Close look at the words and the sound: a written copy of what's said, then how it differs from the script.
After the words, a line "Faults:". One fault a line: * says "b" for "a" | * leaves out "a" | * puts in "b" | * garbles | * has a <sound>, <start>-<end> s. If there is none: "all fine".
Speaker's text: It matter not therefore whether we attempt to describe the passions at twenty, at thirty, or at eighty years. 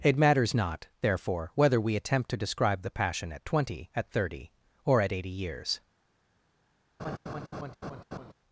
It matters not therefore whether we attempt to describe the passion at twenty, at thirty, or at eighty years.
Faults:
* says "matters" for "matter"
* says "passion" for "passions"
* has a laugh, 7.0-8.3 s